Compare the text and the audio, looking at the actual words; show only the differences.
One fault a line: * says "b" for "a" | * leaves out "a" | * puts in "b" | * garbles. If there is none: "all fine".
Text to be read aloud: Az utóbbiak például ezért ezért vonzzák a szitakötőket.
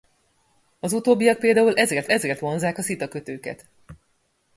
all fine